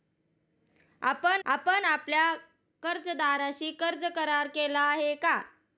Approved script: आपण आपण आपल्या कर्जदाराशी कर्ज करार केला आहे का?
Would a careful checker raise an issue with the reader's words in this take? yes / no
no